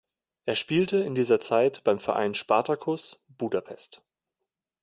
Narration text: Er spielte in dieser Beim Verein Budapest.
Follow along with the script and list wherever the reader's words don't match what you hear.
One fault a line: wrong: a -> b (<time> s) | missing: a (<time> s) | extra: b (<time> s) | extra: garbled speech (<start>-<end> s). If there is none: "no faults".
extra: Zeit (1.4 s)
extra: Spartacus (2.3 s)